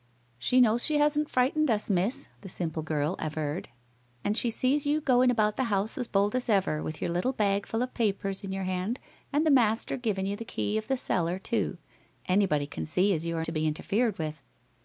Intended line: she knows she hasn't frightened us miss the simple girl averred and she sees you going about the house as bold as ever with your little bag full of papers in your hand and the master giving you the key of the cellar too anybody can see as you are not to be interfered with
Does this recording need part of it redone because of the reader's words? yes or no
yes